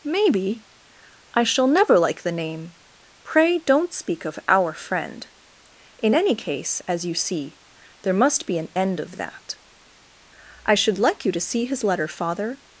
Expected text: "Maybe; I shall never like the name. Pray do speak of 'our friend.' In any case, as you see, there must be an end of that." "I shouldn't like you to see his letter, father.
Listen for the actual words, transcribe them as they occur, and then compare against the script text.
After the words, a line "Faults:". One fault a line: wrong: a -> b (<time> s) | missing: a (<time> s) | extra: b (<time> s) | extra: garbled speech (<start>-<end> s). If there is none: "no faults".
"Maybe; I shall never like the name. Pray don't speak of 'our friend.' In any case, as you see, there must be an end of that." "I should like you to see his letter, father.
Faults:
wrong: do -> don't (3.6 s)
wrong: shouldn't -> should (10.8 s)